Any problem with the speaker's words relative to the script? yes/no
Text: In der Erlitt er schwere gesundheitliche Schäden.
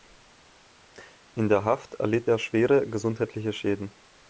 yes